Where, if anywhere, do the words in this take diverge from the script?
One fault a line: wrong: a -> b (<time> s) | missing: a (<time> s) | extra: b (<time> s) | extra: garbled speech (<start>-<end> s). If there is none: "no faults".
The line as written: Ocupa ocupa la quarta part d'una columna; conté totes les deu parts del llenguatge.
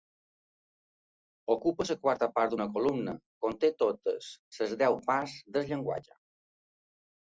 missing: ocupa (1.9 s)